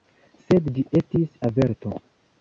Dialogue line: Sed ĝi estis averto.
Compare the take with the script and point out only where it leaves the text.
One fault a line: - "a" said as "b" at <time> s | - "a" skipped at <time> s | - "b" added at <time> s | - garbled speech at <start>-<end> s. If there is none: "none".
none